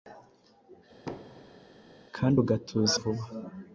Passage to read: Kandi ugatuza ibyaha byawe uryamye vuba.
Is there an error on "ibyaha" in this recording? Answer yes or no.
yes